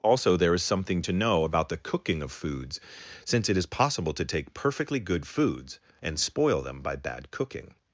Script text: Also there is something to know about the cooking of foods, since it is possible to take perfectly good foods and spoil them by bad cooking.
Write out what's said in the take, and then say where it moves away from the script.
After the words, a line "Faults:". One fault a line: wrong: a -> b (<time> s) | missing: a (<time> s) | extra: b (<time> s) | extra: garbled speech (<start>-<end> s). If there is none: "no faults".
Also there is something to know about the cooking of foods, since it is possible to take perfectly good foods and spoil them by bad cooking.
Faults:
no faults